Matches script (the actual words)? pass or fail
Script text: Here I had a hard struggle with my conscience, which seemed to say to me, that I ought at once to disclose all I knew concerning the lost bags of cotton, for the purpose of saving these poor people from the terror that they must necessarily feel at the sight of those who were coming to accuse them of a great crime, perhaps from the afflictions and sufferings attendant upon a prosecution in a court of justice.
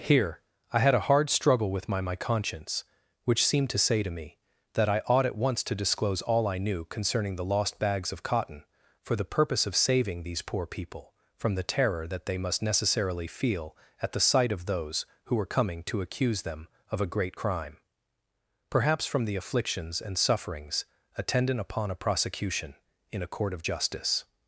fail